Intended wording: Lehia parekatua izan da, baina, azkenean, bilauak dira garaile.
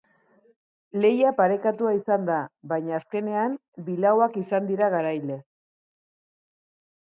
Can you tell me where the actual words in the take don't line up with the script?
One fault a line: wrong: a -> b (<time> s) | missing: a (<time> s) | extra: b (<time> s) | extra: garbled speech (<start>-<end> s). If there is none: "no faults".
extra: izan (4.4 s)